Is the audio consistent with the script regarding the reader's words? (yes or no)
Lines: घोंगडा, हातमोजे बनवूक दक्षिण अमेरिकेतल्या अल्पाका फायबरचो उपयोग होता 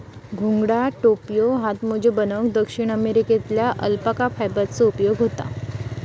no